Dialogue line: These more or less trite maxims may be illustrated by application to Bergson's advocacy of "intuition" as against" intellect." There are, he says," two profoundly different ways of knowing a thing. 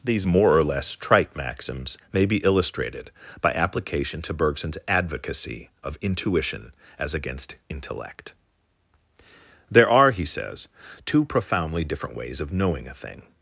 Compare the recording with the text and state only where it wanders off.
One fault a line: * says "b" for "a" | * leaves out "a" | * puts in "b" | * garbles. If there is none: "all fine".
all fine